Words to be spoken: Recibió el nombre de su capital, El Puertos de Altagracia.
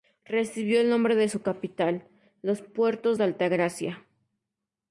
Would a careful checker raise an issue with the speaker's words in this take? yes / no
yes